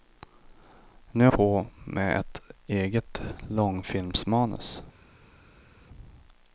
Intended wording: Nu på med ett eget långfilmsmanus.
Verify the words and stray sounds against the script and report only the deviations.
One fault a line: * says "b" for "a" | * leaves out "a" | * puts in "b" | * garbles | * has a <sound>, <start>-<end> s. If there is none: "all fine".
all fine